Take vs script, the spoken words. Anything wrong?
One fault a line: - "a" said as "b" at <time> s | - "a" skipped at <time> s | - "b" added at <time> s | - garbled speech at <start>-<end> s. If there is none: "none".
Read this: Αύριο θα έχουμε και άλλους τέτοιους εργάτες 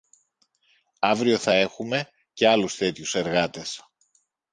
none